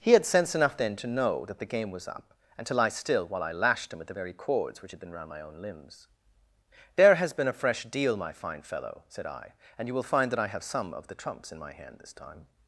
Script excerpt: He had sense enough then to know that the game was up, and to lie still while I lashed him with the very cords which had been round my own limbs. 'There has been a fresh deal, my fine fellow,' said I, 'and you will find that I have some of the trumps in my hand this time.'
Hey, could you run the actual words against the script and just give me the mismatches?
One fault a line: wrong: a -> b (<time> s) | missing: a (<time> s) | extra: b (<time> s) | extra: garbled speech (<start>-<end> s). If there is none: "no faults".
no faults